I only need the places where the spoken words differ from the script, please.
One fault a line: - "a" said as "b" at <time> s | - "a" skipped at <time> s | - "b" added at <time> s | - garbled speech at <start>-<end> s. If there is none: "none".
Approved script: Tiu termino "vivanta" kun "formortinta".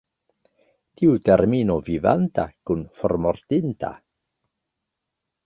none